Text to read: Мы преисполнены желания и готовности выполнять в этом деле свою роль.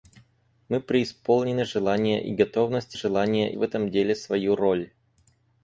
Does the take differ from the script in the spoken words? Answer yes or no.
yes